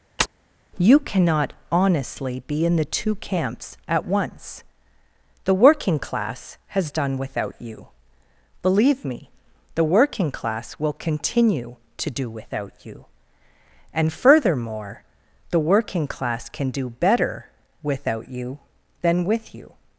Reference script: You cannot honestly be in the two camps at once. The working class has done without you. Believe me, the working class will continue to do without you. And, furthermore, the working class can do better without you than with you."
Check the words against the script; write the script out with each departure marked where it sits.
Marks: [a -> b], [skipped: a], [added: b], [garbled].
You cannot honestly be in the two camps at once. The working class has done without you. Believe me, the working class will continue to do without you. And, furthermore, the working class can do better without you than with you."